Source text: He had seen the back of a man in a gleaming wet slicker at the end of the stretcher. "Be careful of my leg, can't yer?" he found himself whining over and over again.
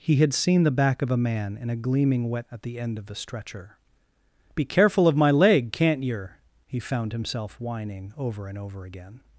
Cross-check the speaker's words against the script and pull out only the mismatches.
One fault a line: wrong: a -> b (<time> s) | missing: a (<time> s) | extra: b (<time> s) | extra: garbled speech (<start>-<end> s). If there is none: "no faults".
missing: slicker (2.5 s)